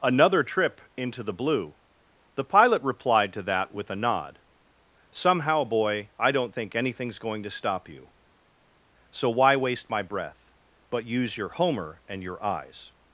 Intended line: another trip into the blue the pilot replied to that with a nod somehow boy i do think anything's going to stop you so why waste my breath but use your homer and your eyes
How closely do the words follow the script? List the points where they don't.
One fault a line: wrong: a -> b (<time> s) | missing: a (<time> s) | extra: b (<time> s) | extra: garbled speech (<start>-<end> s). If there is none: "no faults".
wrong: do -> don't (6.3 s)